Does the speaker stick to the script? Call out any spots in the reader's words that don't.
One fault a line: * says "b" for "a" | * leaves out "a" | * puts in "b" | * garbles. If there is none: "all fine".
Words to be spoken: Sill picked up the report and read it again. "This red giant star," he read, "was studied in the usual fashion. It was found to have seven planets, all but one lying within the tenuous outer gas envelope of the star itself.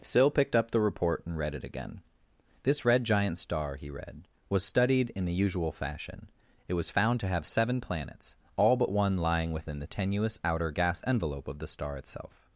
all fine